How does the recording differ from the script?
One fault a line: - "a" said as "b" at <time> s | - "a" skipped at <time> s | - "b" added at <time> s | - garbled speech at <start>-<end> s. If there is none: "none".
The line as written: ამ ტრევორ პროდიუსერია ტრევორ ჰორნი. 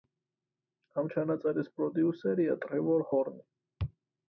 - "ტრევორ" said as "ჩანაწერის" at 1.1 s